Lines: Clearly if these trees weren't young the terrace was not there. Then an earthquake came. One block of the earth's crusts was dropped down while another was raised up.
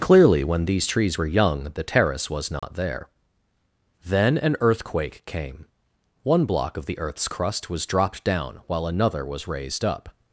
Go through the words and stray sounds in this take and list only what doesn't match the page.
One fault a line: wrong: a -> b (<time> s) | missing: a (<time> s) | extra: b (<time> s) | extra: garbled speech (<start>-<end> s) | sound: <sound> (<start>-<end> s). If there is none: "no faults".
wrong: if -> when (0.4 s)
wrong: weren't -> were (1.2 s)
sound: dropout (2.6-2.6 s)
wrong: crusts -> crust (7.3 s)